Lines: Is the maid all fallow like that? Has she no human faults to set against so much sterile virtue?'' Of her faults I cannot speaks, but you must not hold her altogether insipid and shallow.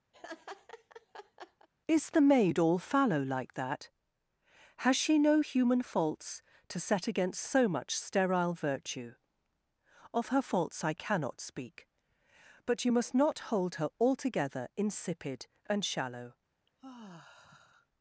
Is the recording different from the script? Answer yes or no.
yes